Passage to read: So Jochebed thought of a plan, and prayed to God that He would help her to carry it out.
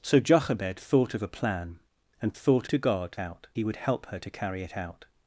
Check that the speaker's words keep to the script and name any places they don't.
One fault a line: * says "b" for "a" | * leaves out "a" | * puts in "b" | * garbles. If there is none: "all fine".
* says "thought" for "prayed"
* says "out" for "that"